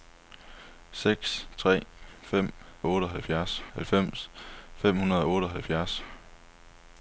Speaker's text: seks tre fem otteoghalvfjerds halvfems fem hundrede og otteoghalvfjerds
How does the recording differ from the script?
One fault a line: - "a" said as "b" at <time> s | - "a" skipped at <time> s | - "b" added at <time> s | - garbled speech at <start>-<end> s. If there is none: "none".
none